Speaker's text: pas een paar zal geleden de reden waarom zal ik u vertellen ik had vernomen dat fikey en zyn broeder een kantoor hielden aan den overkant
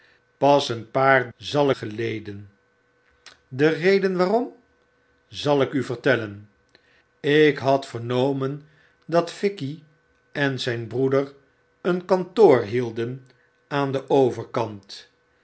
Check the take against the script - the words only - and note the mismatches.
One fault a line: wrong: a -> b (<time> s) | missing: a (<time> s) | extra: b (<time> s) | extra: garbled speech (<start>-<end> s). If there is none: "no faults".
no faults